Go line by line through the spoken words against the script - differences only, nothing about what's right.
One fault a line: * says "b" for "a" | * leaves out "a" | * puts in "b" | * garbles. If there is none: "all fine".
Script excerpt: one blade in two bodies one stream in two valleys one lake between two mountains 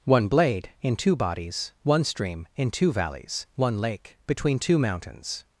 all fine